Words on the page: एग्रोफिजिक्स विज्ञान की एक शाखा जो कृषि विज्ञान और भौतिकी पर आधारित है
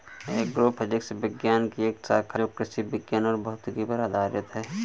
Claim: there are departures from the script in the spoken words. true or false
false